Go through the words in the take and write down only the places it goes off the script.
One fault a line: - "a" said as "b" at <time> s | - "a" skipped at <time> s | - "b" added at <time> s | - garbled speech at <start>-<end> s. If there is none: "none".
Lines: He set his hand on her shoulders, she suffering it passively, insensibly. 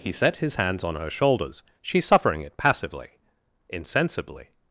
- "hand" said as "hands" at 0.5 s